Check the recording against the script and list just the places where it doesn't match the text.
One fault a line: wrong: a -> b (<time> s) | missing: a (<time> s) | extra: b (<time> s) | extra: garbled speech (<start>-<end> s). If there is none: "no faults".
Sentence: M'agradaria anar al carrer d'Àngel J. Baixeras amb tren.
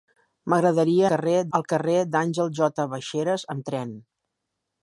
wrong: anar -> carrer (1.1 s)